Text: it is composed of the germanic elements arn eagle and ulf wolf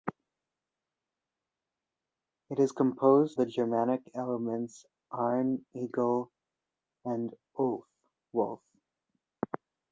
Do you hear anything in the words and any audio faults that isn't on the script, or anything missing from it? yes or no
yes